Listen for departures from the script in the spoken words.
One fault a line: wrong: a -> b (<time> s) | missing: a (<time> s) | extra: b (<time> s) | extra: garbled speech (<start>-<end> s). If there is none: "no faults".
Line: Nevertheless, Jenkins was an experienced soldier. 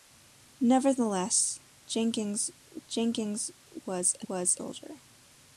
extra: Jenkins (2.9 s)
wrong: experienced -> was (4.3 s)